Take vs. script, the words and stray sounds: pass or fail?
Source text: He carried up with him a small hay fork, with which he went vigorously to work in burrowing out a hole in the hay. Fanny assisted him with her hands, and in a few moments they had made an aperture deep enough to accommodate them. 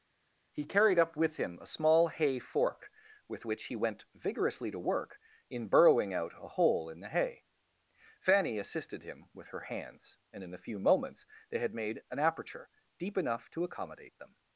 pass